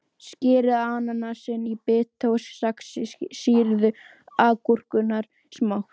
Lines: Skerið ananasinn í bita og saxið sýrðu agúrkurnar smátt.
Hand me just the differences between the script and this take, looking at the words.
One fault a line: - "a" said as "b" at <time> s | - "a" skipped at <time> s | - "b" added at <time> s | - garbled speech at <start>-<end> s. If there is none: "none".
none